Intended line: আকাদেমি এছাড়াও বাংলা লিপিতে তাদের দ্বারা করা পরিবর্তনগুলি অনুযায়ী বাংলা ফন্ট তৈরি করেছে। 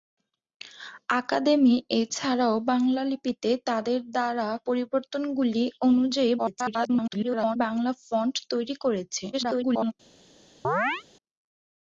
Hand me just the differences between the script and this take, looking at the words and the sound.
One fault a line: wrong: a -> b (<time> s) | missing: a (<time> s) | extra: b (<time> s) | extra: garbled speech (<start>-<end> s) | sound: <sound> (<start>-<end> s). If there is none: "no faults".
missing: করা (4.5 s)
extra: garbled speech (6.4-7.6 s)
extra: garbled speech (9.3-9.9 s)
sound: chirp (10.6-11.0 s)